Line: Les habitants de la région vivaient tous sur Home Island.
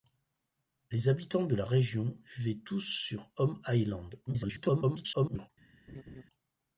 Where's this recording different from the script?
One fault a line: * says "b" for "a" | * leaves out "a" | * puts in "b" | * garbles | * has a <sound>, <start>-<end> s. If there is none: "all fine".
* garbles
* has a laugh, 5.9-6.2 s